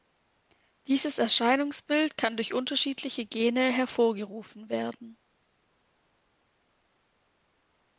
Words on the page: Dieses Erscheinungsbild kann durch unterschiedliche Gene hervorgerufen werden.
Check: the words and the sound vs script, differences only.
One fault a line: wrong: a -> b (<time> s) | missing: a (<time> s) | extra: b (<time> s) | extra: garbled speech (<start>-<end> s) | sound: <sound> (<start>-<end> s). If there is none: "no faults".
no faults